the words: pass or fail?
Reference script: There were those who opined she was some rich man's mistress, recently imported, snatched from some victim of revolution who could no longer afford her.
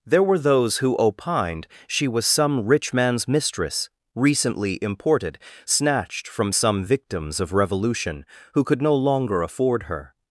fail